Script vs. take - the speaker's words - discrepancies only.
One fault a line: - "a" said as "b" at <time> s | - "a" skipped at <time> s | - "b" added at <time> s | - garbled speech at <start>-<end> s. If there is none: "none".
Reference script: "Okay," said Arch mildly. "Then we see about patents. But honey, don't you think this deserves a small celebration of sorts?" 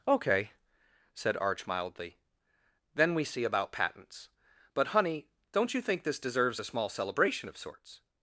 none